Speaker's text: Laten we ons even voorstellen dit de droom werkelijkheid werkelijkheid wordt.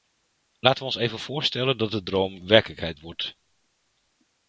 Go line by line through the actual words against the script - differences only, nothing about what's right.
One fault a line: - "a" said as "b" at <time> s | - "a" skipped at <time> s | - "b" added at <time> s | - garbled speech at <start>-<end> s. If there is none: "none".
- "dit" said as "dat" at 1.8 s
- "werkelijkheid" skipped at 3.0 s